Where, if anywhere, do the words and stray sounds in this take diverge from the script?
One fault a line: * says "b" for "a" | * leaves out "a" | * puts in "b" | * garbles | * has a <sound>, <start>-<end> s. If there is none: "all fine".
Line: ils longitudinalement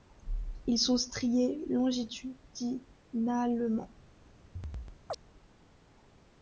* puts in "sont striés"
* has a chirp, 4.6-5.2 s